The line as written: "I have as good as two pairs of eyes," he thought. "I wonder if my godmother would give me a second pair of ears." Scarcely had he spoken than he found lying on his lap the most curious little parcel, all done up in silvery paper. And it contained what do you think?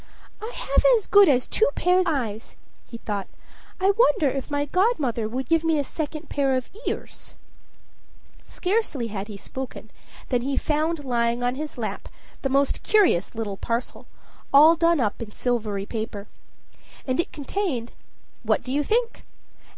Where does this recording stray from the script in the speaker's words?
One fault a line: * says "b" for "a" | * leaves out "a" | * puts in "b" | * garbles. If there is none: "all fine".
* leaves out "of"